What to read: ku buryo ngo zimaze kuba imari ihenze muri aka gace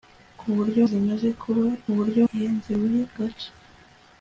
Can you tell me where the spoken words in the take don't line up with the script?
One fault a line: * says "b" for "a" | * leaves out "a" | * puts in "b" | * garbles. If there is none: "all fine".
* leaves out "ngo"
* says "buryo" for "imari"
* leaves out "aka"